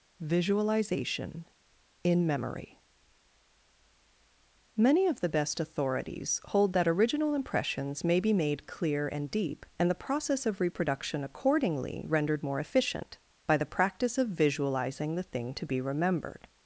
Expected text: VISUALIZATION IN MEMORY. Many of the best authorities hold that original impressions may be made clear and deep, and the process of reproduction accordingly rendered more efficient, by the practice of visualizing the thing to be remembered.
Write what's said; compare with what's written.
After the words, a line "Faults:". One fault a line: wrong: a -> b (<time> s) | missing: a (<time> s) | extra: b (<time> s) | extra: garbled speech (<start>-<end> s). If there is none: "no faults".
VISUALIZATION IN MEMORY. Many of the best authorities hold that original impressions may be made clear and deep, and the process of reproduction accordingly rendered more efficient, by the practice of visualizing the thing to be remembered.
Faults:
no faults